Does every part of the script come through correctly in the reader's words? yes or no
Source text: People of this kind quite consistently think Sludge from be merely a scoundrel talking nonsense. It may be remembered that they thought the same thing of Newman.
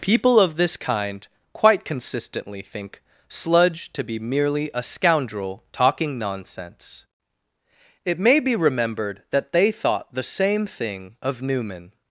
no